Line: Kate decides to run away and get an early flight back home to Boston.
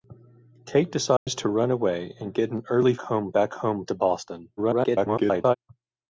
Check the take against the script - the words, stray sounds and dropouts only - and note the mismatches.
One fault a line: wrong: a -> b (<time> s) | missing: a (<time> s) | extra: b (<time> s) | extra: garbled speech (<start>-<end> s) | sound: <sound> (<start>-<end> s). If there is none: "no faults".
sound: dropout (1.2-1.3 s)
wrong: flight -> home (3.0 s)
extra: garbled speech (4.6-5.6 s)